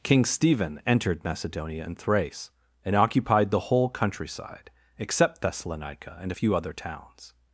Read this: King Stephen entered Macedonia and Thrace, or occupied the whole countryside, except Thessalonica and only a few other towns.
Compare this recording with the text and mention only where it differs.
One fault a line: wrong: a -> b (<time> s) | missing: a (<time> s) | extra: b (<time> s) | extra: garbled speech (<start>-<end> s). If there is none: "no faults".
wrong: or -> and (2.8 s)
missing: only (6.3 s)